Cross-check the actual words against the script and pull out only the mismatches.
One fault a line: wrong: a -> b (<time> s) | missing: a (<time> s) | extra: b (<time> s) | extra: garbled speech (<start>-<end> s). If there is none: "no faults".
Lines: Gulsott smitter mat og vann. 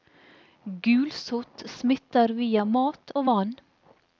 extra: via (2.4 s)